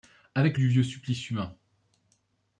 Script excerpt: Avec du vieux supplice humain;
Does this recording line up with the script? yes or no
yes